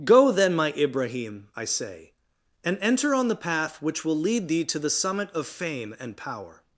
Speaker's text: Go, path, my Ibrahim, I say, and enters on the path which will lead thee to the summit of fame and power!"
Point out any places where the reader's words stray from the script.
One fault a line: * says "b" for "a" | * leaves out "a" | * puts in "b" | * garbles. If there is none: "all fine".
* says "then" for "path"
* says "enter" for "enters"